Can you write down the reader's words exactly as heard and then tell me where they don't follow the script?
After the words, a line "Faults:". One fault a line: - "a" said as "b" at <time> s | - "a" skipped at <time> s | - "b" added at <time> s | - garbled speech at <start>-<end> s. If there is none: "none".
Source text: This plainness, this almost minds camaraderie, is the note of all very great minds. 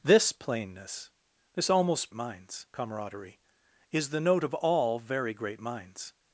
This plainness, this almost minds camaraderie, is the note of all very great minds.
Faults:
none